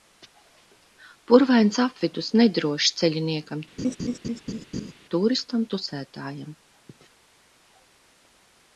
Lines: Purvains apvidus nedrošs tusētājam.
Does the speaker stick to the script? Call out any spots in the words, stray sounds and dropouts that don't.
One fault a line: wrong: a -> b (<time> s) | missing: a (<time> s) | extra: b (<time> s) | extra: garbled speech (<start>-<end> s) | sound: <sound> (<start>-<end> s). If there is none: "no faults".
extra: ceļiniekam tūristam (3.0 s)
sound: laugh (3.8-4.9 s)